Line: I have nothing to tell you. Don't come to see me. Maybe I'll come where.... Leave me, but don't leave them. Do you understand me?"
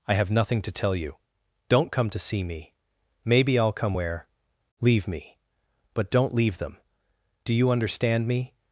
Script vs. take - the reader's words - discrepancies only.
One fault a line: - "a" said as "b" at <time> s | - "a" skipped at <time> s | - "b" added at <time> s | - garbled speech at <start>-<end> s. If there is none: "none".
none